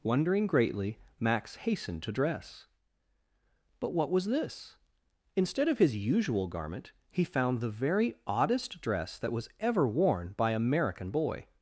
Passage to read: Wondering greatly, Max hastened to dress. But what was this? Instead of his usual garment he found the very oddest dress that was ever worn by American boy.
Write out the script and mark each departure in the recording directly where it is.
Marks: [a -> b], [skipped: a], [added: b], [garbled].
Wondering greatly, Max hastened to dress. But what was this? Instead of his usual garment he found the very oddest dress that was ever worn by American boy.